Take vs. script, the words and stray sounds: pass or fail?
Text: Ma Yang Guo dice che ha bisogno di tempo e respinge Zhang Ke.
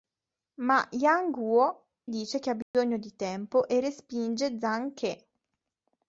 fail